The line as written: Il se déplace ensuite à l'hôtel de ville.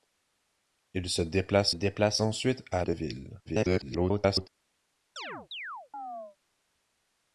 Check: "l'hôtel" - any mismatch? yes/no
yes